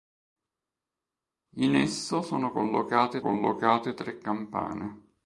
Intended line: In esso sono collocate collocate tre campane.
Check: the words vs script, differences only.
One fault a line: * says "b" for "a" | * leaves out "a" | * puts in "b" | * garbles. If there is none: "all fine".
all fine